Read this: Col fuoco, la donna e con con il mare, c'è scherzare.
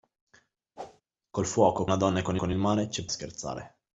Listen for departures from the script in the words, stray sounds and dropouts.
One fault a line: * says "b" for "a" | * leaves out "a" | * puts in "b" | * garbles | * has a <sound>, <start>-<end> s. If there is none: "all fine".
* has a whoosh, 0.8-1.0 s